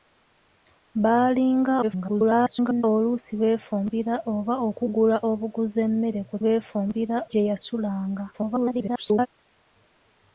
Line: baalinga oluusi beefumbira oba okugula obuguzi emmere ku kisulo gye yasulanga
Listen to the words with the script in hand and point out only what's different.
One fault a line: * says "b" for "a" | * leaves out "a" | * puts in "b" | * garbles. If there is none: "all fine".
* garbles
* says "beefumbira" for "kisulo"
* garbles